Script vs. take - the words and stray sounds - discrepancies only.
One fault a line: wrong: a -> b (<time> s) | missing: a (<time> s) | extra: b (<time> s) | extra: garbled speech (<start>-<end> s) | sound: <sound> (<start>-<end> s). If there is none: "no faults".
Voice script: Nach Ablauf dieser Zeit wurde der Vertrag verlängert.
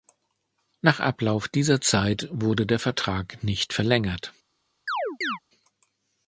extra: nicht (3.4 s)
sound: chirp (4.9-5.4 s)